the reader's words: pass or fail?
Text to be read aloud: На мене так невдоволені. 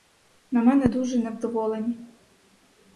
fail